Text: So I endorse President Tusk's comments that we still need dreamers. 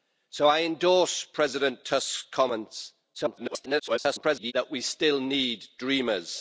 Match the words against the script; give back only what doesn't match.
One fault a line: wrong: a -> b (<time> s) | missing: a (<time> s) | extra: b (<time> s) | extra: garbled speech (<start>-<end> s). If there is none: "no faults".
extra: garbled speech (3.1-4.5 s)